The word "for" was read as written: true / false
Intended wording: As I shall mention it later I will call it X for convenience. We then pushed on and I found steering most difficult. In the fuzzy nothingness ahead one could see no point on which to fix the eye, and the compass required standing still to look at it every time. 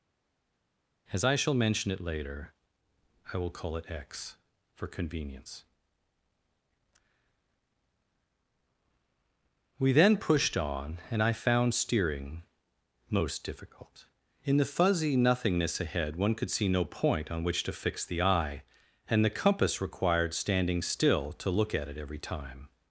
true